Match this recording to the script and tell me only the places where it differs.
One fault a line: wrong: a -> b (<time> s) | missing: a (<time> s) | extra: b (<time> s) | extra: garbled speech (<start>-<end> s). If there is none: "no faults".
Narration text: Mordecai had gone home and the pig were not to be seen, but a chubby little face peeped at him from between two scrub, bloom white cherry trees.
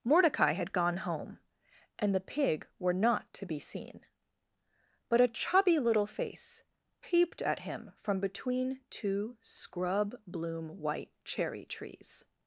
no faults